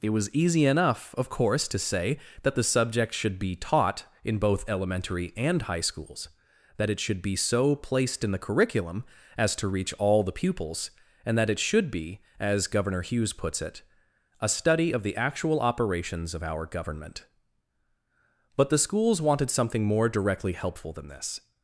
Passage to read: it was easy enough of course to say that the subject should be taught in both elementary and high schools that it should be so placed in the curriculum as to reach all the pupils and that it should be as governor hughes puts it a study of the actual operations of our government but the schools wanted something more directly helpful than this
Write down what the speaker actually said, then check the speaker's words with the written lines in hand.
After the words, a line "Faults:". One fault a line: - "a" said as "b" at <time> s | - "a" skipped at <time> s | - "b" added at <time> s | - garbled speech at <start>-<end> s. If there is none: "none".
it was easy enough of course to say that the subject should be taught in both elementary and high schools that it should be so placed in the curriculum as to reach all the pupils and that it should be as governor hughes puts it a study of the actual operations of our government but the schools wanted something more directly helpful than this
Faults:
none